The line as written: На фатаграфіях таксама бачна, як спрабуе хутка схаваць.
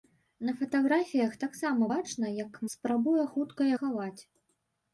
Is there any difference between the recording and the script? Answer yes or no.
no